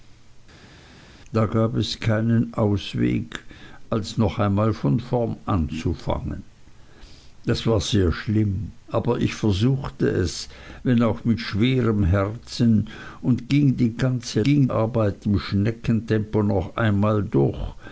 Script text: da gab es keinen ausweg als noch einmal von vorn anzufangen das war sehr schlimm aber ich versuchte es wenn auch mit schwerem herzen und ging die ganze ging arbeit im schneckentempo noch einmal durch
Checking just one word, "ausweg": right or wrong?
right